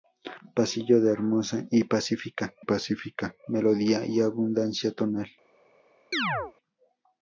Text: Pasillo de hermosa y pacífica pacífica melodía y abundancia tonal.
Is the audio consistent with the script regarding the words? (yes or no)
yes